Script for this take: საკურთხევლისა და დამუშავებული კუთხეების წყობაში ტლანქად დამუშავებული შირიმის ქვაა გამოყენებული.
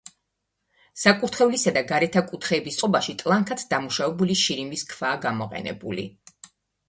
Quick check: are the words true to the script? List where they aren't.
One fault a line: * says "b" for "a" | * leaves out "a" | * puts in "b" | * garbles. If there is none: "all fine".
* says "გარეთა" for "დამუშავებული"